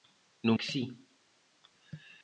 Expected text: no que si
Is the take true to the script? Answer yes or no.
yes